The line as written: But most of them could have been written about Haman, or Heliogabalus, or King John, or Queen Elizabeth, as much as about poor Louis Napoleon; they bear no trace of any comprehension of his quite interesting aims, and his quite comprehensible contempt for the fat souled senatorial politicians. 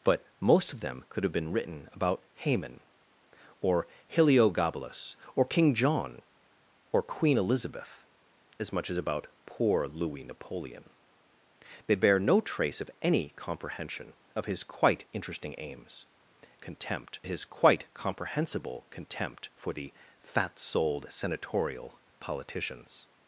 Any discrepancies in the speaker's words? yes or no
yes